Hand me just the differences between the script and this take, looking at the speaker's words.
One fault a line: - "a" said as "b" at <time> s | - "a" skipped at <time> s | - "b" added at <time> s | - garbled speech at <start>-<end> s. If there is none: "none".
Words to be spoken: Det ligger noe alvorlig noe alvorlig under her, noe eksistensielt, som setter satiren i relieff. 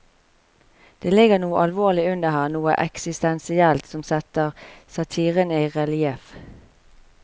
- "noe alvorlig" skipped at 2.0 s